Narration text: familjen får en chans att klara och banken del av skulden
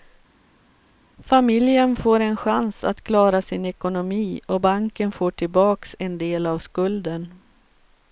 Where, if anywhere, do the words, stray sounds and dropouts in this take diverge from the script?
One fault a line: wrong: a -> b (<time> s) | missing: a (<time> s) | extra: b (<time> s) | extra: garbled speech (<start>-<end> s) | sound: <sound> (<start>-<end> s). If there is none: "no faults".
extra: sin ekonomi (3.4 s)
extra: får tillbaks en (5.1 s)